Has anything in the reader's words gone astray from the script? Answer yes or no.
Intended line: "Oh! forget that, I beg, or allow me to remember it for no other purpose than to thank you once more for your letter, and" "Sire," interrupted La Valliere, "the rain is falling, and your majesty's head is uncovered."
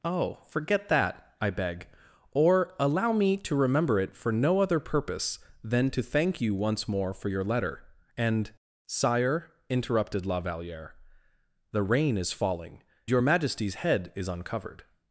yes